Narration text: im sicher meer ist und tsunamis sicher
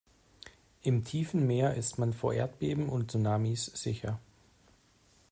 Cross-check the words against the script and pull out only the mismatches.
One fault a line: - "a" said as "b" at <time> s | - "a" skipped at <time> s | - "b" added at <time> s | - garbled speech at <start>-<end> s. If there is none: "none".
- "sicher" said as "tiefen" at 1.0 s
- "man vor erdbeben" added at 2.0 s